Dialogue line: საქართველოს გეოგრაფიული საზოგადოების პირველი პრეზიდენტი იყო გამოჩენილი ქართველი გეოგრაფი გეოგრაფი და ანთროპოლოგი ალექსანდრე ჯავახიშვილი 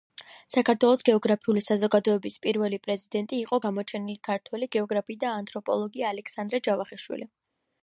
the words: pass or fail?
fail